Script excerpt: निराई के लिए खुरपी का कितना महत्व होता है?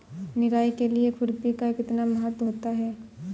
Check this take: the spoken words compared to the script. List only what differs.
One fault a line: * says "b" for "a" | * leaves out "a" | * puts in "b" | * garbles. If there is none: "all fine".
all fine